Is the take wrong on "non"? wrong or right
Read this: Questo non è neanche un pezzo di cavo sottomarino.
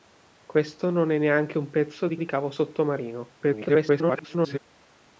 right